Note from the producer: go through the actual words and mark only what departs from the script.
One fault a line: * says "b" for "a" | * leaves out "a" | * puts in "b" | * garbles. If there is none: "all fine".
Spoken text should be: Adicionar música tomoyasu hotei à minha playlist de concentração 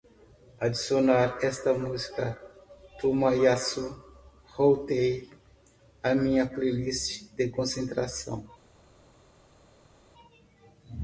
* puts in "esta"